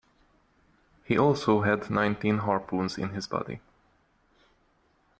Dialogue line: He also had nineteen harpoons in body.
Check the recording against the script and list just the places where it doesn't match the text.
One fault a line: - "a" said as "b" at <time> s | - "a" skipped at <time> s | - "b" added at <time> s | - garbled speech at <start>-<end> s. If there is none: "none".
- "his" added at 3.1 s